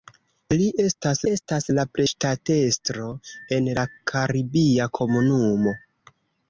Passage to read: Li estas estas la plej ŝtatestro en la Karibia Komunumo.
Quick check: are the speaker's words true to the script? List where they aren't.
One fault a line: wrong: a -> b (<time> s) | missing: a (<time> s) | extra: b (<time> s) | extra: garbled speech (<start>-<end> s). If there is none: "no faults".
no faults